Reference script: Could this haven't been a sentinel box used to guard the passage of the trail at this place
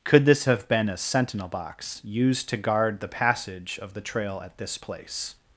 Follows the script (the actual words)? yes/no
no